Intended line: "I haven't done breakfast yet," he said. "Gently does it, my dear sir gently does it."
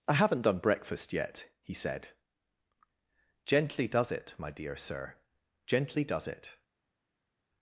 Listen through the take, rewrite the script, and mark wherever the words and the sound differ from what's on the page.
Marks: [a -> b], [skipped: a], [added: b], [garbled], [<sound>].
"I haven't done breakfast yet," he said. "Gently does it, my dear sir gently does it."